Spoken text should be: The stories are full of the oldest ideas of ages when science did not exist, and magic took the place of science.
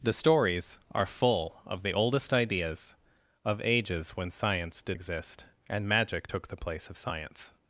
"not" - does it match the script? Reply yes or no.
no